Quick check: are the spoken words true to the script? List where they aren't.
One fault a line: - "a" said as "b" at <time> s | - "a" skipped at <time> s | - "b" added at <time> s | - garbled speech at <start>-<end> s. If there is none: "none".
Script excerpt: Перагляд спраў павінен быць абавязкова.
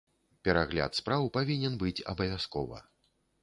none